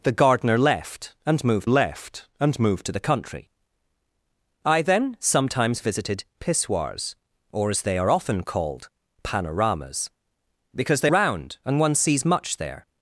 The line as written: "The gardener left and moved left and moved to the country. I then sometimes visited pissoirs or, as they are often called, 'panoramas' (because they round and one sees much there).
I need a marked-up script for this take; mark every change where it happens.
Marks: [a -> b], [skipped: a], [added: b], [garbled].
"The gardener left and moved left and moved to the country. I then sometimes visited pissoirs or, as they are often called, 'panoramas' (because they round and one sees much there).